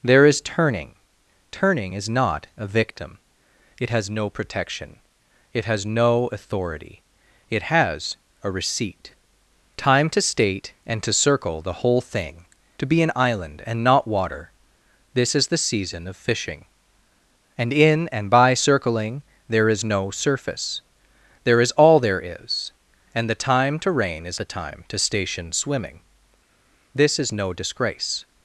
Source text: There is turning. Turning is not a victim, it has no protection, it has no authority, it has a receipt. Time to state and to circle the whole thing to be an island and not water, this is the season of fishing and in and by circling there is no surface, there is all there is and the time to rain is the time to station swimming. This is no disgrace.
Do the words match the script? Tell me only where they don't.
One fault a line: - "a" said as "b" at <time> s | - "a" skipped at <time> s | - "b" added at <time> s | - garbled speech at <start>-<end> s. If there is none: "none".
none